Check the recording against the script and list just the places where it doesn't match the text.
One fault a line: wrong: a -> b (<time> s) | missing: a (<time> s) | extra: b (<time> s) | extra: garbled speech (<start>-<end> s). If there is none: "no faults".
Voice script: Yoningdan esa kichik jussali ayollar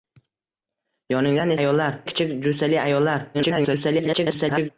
wrong: esa -> ayollar (1.6 s)
extra: garbled speech (3.3-4.7 s)